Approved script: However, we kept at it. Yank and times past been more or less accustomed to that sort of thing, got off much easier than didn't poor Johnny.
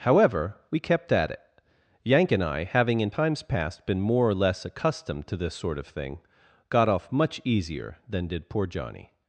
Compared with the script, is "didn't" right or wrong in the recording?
wrong